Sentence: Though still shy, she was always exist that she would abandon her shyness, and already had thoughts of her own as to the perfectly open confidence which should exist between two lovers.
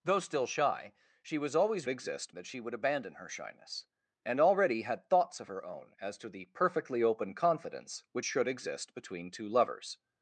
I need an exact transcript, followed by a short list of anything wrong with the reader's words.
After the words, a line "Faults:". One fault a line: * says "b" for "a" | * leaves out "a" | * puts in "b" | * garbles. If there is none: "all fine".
Though still shy, she was always exist that she would abandon her shyness, and already had thoughts of her own as to the perfectly open confidence which should exist between two lovers.
Faults:
all fine